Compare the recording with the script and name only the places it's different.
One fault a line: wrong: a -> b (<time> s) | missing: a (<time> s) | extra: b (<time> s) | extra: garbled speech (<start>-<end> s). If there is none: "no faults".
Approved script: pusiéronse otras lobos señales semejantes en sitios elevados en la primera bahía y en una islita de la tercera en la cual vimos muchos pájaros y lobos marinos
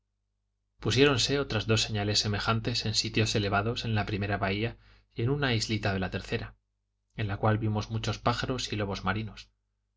wrong: lobos -> dos (1.7 s)